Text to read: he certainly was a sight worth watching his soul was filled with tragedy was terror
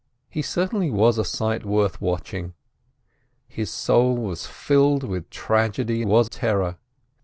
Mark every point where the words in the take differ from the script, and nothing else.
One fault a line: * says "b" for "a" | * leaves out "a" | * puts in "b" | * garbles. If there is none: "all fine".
all fine